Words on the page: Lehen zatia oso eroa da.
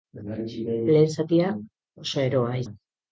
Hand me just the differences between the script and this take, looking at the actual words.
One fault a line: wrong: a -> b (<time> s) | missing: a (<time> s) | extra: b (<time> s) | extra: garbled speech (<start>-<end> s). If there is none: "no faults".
no faults